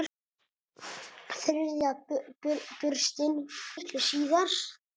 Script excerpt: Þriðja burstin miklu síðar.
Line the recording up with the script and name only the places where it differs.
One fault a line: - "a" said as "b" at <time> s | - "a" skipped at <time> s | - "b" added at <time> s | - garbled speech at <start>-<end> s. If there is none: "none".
none